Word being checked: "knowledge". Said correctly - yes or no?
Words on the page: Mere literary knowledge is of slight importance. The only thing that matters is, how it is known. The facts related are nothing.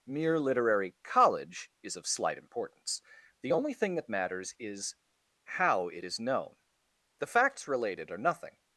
no